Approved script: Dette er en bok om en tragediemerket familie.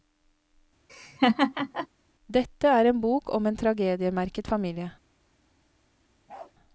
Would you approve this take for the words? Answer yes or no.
yes